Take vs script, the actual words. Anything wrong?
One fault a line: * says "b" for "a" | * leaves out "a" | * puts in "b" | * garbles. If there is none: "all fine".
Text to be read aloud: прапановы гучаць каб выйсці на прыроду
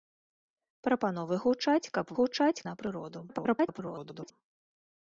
* says "гучаць" for "выйсці"
* garbles